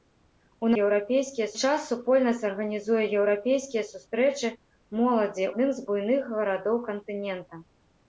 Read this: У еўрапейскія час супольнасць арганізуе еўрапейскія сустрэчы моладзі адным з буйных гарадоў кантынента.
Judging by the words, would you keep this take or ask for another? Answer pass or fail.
pass